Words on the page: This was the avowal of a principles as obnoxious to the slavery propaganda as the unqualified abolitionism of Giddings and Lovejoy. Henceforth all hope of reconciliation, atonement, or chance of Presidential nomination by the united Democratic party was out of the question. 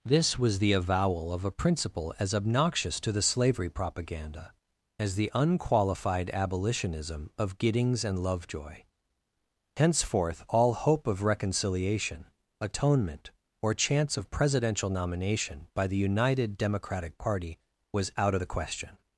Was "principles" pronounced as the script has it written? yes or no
no